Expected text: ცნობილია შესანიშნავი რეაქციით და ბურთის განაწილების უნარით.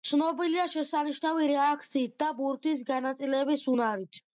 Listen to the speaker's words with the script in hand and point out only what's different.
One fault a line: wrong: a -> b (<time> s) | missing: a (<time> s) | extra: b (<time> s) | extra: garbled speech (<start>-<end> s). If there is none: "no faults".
no faults